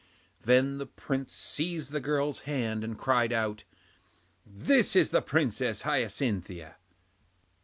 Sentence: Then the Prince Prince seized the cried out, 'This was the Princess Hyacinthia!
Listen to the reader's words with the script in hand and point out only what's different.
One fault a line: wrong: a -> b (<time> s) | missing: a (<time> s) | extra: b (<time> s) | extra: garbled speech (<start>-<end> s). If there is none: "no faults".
missing: Prince (1.3 s)
extra: girl's hand and (2.0 s)
wrong: was -> is (5.0 s)